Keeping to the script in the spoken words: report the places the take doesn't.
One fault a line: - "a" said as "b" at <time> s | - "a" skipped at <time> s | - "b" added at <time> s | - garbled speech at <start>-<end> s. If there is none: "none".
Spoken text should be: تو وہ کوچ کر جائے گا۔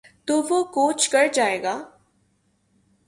none